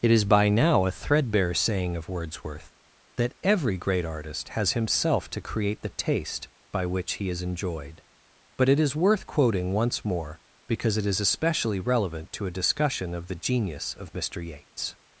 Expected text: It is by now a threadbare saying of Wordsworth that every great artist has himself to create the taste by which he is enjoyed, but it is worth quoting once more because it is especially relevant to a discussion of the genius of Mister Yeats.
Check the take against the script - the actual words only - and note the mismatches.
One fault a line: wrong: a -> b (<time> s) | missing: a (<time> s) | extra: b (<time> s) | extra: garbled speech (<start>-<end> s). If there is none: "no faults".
no faults